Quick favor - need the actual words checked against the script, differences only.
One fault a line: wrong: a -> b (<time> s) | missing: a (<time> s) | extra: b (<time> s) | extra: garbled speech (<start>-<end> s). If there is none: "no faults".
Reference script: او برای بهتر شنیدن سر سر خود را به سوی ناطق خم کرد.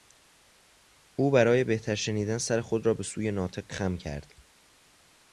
missing: سر (2.6 s)